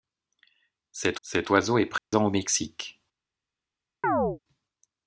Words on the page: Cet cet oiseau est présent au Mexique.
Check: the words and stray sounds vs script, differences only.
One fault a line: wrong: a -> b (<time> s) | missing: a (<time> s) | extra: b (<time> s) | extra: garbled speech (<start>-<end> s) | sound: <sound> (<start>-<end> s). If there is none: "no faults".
sound: dropout (2.0-2.1 s)
sound: chirp (4.0-4.4 s)